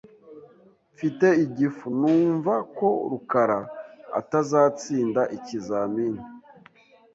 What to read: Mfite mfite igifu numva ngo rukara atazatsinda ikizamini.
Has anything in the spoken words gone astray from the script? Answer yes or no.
yes